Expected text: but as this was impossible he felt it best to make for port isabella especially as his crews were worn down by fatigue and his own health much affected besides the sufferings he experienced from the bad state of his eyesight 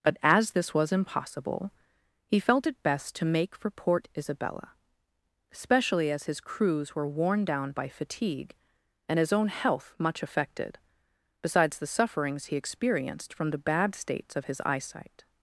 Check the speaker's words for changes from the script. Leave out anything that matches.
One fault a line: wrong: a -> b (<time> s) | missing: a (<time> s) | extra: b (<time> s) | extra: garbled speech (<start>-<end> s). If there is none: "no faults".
wrong: state -> states (13.9 s)